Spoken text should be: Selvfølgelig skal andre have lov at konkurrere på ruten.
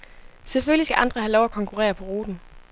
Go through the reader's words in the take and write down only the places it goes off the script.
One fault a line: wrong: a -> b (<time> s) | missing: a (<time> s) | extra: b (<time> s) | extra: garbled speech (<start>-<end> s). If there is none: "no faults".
no faults